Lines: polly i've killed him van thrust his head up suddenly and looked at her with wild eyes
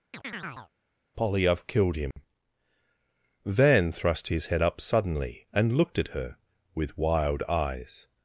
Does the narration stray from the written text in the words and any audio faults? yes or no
yes